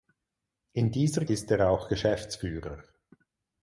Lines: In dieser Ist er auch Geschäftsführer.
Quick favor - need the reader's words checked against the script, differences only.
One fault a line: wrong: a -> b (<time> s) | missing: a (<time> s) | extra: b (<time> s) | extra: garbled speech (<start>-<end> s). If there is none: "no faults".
no faults